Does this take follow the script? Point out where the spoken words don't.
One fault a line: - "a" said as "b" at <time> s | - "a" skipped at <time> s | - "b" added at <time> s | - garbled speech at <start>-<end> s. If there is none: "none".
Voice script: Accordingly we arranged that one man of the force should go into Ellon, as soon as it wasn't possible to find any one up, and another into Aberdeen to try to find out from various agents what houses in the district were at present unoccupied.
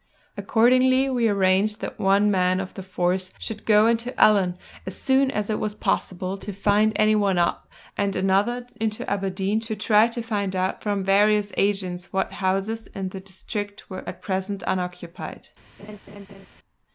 - "wasn't" said as "was" at 5.6 s